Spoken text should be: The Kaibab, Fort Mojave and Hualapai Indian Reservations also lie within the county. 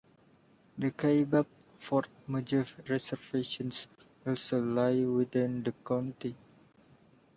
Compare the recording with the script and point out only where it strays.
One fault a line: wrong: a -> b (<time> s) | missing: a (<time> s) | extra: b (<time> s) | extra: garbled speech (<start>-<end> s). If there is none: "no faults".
missing: and Hualapai Indian (2.8 s)